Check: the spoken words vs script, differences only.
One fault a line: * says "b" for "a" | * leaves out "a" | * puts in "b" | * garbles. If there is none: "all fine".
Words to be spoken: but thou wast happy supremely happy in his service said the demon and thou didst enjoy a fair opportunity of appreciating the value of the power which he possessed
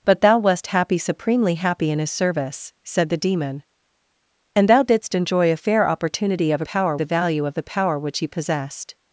* says "power" for "appreciating"